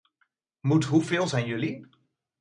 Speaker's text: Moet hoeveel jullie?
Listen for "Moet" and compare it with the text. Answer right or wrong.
right